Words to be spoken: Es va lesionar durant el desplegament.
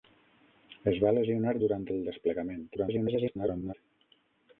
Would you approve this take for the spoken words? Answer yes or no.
no